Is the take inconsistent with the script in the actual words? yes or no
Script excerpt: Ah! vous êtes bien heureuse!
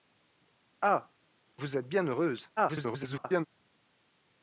yes